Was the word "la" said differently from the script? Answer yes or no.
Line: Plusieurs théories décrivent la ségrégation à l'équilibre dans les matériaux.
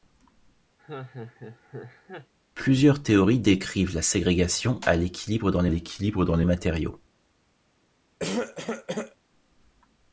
no